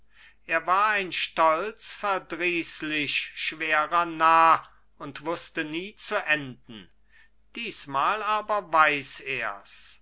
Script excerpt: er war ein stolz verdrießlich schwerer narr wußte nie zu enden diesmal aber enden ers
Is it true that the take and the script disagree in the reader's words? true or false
true